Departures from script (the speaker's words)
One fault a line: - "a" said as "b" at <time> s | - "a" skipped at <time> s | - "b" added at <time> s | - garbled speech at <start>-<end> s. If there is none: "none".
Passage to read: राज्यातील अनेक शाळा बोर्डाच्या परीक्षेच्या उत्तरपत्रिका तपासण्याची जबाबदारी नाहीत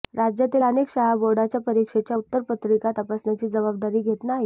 - "घेत" added at 4.0 s